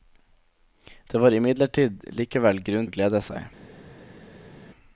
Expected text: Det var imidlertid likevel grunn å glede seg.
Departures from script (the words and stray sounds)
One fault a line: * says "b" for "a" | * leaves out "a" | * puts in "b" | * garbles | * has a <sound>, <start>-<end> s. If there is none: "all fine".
all fine